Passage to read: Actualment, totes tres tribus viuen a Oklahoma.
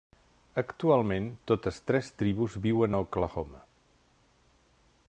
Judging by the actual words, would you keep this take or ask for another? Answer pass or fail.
pass